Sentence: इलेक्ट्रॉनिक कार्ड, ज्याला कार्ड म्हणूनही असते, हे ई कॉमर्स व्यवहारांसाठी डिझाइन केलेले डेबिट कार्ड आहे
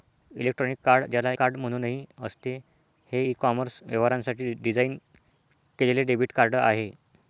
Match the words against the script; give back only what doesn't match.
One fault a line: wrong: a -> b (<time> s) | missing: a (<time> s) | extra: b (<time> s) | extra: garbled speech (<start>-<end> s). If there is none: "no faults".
no faults